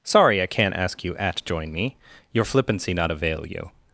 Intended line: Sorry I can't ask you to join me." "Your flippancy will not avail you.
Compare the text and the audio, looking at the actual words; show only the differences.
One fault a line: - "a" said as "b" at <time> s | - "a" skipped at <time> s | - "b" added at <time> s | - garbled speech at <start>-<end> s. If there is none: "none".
- "to" said as "at" at 1.2 s
- "will" skipped at 2.9 s